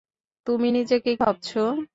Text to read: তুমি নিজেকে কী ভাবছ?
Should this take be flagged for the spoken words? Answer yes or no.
yes